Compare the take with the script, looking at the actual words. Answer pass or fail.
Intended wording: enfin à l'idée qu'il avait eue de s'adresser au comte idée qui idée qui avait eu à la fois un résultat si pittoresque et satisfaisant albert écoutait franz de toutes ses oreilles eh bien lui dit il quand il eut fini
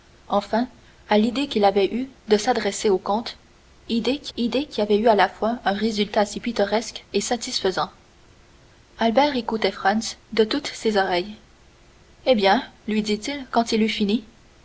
pass